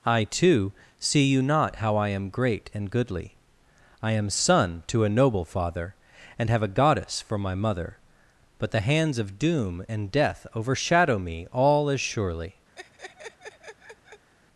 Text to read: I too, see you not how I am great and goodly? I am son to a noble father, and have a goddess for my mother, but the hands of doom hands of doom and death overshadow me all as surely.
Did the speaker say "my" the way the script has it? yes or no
yes